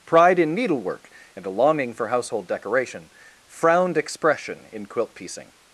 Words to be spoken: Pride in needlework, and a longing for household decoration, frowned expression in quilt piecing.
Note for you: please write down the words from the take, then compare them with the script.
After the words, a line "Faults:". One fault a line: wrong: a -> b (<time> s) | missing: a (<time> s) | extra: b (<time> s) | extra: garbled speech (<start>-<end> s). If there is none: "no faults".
Pride in needlework, and a longing for household decoration, frowned expression in quilt piecing.
Faults:
no faults